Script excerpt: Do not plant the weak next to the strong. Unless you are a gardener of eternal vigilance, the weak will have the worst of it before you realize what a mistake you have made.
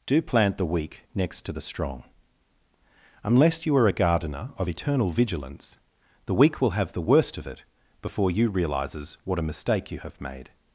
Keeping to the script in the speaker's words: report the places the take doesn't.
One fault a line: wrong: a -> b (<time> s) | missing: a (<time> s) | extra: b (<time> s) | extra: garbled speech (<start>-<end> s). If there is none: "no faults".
missing: not (0.2 s)
wrong: realize -> realizes (8.5 s)